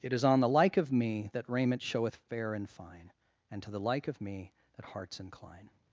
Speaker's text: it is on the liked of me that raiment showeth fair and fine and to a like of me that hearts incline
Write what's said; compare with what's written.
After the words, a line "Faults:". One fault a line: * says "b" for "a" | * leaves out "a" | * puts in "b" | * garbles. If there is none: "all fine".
it is on the like of me that raiment showeth fair and fine and to the like of me that hearts incline
Faults:
* says "like" for "liked"
* says "the" for "a"